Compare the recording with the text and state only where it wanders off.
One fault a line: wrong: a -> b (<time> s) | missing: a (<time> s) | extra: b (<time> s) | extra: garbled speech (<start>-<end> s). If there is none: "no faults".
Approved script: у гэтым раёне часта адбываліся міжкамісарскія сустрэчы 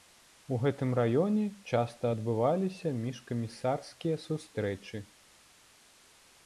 no faults